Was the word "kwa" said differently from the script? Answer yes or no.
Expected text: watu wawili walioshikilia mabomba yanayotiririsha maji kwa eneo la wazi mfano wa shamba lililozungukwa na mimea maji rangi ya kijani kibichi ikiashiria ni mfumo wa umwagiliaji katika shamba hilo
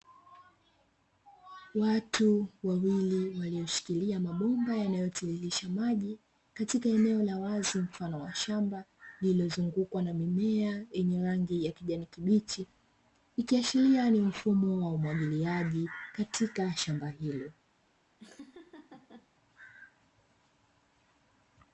yes